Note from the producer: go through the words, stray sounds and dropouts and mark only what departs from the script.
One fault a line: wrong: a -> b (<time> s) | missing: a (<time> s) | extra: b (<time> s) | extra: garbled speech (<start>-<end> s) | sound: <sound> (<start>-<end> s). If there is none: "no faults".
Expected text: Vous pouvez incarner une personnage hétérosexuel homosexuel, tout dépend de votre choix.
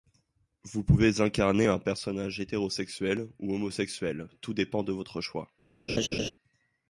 wrong: une -> un (1.7 s)
extra: ou (3.4 s)
sound: laugh (5.9-6.3 s)